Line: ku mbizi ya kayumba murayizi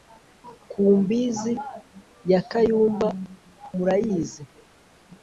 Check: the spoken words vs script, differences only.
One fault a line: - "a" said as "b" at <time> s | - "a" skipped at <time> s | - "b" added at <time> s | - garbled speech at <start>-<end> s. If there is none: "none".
none